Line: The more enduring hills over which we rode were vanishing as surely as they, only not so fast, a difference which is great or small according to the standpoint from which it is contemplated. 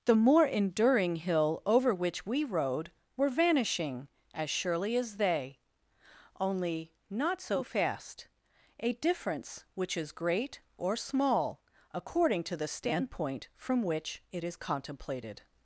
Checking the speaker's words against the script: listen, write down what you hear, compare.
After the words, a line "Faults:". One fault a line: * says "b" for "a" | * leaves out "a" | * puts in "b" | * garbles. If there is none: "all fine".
The more enduring hill over which we rode were vanishing as surely as they, only not so fast, a difference which is great or small according to the standpoint from which it is contemplated.
Faults:
* says "hill" for "hills"